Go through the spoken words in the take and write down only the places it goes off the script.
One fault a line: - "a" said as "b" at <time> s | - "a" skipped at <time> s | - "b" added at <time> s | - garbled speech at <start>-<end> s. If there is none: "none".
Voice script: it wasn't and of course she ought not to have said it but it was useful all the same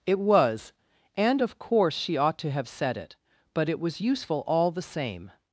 - "wasn't" said as "was" at 0.2 s
- "not" skipped at 2.4 s